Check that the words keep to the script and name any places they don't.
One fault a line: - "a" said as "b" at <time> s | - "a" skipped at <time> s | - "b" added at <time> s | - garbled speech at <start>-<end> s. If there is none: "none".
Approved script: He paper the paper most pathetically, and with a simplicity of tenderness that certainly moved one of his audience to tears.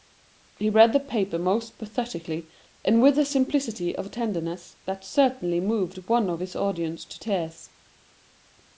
- "paper" said as "read" at 0.7 s